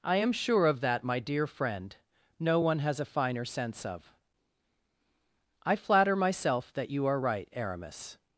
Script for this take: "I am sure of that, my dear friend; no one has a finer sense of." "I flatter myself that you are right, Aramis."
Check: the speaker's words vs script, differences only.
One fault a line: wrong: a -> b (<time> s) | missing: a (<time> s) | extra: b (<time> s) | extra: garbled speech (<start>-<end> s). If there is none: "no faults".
no faults